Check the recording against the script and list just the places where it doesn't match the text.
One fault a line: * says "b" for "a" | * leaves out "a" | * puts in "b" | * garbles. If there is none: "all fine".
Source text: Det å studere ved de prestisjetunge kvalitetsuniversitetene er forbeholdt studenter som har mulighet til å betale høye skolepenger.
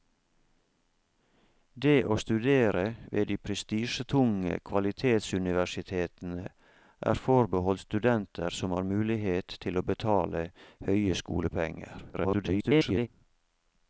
* garbles